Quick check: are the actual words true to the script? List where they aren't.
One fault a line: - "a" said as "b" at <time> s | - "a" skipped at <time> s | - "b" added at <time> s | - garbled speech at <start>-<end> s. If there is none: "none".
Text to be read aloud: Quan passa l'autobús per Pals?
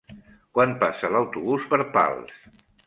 none